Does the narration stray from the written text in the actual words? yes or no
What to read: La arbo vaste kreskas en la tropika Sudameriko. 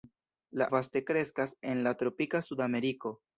yes